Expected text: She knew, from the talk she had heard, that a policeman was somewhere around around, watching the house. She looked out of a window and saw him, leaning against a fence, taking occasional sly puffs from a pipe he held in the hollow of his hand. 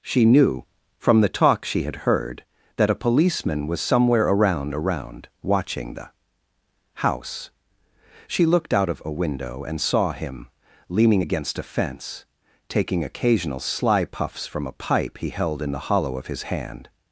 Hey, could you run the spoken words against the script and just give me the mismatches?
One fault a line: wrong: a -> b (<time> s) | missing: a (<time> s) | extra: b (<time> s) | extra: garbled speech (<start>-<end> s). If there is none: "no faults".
no faults